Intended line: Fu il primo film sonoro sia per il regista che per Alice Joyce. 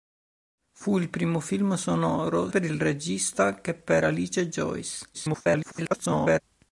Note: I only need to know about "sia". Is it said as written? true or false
false